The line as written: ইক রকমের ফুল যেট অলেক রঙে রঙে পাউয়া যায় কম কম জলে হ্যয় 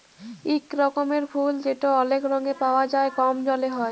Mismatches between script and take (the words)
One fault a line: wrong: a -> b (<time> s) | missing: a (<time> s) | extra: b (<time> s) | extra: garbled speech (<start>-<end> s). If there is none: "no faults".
missing: রঙে (2.5 s)
missing: কম (3.4 s)